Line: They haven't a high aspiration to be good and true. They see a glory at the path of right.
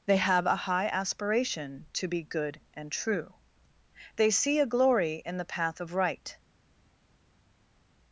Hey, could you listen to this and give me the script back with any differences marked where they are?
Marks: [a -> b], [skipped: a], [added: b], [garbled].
They [haven't -> have] a high aspiration to be good and true. They see a glory [at -> in] the path of right.